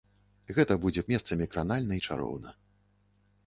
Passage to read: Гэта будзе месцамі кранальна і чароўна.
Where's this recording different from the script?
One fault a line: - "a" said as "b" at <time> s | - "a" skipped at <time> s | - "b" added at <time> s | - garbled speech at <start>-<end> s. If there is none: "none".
none